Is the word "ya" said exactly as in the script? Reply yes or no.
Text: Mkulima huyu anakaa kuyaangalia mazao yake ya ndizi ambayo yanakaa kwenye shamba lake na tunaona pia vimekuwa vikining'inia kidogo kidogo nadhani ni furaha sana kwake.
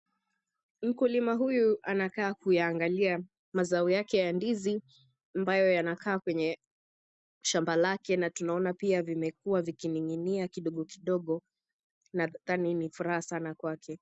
yes